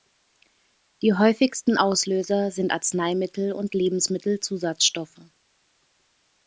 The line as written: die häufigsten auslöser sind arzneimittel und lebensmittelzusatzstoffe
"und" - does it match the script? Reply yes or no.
yes